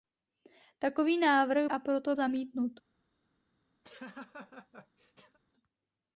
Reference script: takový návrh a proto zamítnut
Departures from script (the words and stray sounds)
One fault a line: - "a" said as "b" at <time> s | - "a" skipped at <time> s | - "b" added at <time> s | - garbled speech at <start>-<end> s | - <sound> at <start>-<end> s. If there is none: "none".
- laugh at 3.8-5.4 s